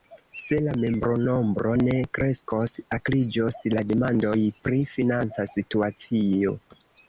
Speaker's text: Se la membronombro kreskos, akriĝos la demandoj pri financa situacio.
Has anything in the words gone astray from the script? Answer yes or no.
yes